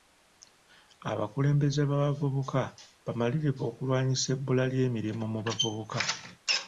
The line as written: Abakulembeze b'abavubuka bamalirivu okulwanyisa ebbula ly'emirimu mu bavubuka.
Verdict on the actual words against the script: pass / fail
pass